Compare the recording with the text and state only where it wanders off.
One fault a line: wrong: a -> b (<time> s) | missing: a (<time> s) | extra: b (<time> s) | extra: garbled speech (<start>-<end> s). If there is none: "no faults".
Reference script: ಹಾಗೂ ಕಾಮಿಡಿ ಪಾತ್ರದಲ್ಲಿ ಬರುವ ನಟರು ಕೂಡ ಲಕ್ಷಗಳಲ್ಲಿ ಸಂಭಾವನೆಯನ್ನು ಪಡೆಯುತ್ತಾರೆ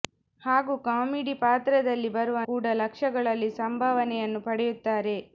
missing: ನಟರು (2.4 s)